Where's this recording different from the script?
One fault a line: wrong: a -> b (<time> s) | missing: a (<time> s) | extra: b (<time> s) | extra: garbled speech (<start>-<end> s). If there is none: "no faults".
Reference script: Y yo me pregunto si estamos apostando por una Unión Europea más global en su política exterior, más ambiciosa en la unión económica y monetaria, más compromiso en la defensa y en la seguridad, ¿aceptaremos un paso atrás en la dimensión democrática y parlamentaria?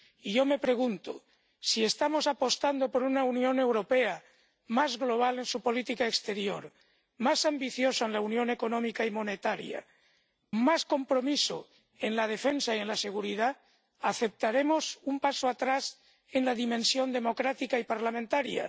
no faults